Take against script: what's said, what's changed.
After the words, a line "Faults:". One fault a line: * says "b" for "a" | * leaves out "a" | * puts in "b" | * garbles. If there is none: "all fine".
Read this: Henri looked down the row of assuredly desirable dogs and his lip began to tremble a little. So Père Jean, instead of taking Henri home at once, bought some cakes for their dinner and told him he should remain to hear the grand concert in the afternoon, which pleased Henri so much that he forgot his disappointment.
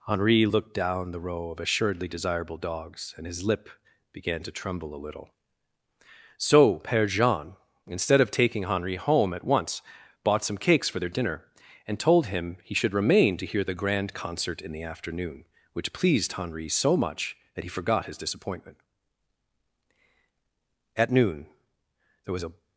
Henri looked down the row of assuredly desirable dogs and his lip began to tremble a little. So Père Jean, instead of taking Henri home at once, bought some cakes for their dinner and told him he should remain to hear the grand concert in the afternoon, which pleased Henri so much that he forgot his disappointment. At noon there was a
Faults:
* puts in "At noon there was a"